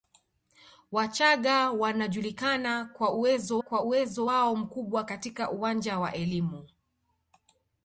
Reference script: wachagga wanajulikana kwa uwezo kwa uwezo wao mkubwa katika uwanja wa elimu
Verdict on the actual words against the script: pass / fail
pass